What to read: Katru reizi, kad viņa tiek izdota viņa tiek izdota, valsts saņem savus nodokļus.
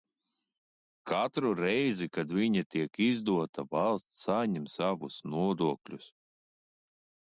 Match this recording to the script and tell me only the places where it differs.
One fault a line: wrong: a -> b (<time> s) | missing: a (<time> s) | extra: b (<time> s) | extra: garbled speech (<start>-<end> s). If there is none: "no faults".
missing: viņa tiek izdota (3.7 s)